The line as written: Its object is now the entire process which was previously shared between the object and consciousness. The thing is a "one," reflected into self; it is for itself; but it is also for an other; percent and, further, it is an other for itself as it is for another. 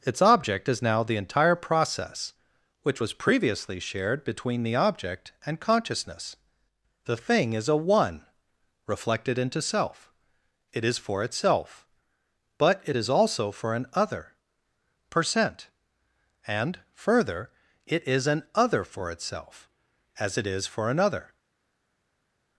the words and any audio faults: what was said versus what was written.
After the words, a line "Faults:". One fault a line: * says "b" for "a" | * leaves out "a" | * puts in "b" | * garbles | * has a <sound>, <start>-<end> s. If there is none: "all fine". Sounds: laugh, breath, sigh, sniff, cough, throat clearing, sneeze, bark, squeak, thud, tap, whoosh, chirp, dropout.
Its object is now the entire process which was previously shared between the object and consciousness. The thing is a "one," reflected into self; it is for itself; but it is also for an other; percent and, further, it is an other for itself as it is for another.
Faults:
all fine